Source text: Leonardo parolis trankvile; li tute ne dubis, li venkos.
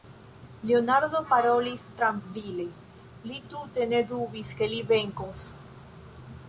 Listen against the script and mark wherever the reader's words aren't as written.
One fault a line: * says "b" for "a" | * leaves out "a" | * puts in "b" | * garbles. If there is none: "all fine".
* puts in "ke"